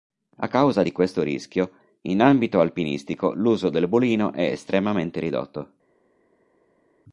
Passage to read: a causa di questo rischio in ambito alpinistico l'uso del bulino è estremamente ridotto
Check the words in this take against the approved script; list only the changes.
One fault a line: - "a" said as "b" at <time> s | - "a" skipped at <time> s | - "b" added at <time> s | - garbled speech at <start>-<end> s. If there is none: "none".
none